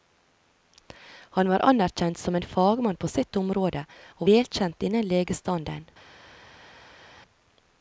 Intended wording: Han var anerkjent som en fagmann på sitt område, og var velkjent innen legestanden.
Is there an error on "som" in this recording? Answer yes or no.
no